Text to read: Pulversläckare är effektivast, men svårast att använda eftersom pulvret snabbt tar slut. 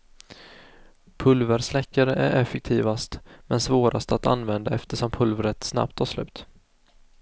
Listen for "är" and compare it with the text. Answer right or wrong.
right